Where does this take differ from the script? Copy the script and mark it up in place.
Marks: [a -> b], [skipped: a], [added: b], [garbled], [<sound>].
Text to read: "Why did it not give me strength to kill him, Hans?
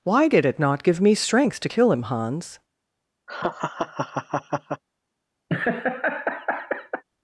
"Why did it not give me strength to kill him, Hans? [laugh] [laugh]